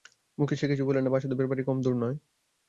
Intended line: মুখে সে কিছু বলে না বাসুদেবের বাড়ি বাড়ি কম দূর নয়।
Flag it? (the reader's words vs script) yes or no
yes